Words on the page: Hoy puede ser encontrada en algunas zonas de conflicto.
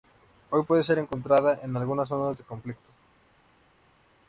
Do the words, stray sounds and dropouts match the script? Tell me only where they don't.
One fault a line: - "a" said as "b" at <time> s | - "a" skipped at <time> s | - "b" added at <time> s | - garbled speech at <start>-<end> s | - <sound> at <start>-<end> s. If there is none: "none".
none